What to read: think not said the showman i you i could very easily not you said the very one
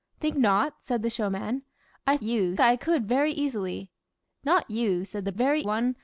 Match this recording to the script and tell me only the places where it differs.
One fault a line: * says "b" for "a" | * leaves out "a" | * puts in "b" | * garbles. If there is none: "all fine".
all fine